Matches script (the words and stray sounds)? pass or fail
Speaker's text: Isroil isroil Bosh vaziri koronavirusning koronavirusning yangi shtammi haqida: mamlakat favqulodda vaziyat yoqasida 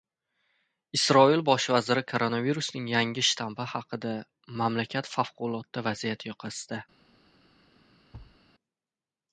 fail